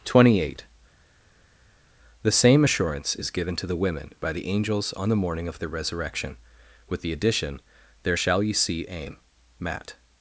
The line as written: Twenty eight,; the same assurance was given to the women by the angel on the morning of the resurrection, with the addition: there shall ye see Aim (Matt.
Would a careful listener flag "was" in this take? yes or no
yes